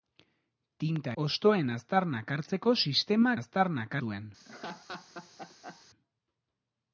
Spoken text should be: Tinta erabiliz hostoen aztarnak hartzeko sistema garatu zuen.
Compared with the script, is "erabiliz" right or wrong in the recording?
wrong